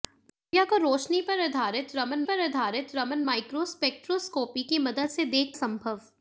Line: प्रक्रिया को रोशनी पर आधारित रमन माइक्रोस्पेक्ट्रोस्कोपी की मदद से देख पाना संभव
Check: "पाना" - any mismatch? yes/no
yes